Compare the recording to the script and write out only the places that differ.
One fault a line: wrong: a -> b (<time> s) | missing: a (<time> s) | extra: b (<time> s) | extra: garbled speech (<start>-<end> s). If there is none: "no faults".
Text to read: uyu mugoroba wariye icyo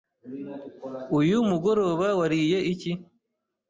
wrong: icyo -> iki (2.7 s)